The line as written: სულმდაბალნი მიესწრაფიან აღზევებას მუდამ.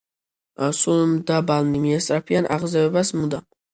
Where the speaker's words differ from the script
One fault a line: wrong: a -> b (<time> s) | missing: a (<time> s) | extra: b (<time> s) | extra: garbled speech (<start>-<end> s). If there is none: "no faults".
no faults